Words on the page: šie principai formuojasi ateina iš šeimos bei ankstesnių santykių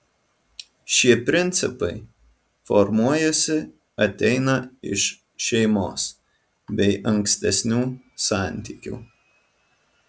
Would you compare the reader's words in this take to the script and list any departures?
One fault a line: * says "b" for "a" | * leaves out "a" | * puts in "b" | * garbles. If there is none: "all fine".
all fine